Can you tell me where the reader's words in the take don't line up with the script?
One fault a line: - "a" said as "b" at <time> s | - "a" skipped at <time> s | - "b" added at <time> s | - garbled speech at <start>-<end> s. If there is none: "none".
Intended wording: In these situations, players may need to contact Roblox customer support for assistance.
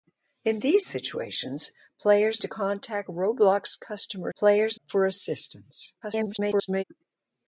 - "may need" skipped at 2.4 s
- "support" said as "players" at 4.4 s
- garbled speech at 6.0-6.8 s